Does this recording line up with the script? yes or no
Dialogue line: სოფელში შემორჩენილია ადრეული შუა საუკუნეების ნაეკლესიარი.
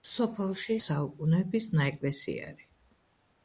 no